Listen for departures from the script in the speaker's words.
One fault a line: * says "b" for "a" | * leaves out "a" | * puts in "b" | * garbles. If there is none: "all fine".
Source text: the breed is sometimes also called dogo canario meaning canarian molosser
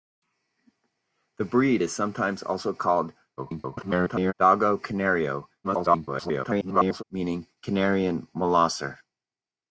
* garbles
* garbles